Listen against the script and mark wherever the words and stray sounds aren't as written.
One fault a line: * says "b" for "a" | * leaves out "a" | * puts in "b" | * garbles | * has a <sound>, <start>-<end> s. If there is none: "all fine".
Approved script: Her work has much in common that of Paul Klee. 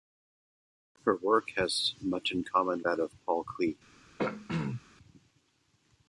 * has a throat clearing, 4.2-4.8 s